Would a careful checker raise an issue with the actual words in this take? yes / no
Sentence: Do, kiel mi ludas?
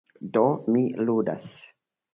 yes